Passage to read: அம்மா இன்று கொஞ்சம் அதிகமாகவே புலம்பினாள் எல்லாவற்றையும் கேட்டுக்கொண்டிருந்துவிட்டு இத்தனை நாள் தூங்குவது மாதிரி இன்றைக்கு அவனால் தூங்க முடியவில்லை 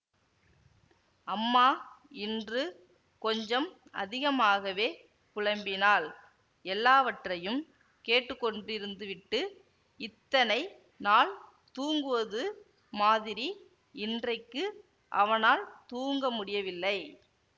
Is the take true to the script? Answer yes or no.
yes